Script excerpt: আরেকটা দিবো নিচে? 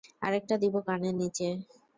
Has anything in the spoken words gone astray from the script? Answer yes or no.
yes